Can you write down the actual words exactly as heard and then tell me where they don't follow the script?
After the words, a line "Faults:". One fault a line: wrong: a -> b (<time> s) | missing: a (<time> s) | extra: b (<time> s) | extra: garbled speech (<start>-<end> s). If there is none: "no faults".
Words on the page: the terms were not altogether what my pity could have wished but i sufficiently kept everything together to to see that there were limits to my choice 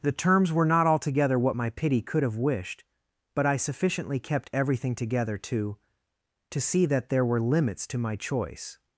the terms were not altogether what my pity could have wished but i sufficiently kept everything together to to see that there were limits to my choice
Faults:
no faults